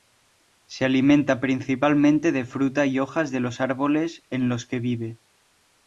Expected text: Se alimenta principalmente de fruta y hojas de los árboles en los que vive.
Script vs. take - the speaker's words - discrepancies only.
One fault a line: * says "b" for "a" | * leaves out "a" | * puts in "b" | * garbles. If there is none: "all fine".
all fine